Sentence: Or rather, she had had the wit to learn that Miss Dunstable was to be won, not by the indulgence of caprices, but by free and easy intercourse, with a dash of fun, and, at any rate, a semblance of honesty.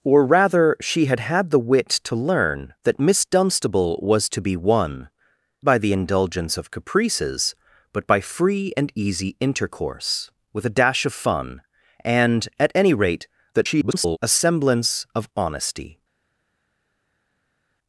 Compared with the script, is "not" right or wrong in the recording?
wrong